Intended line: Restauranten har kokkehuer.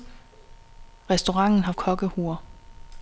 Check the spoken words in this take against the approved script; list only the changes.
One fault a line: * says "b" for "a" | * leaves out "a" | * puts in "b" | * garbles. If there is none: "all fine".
all fine